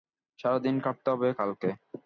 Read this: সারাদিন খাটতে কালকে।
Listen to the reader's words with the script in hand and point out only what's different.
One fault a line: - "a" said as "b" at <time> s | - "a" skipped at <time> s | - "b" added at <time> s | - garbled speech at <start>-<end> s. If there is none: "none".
- "হবে" added at 1.1 s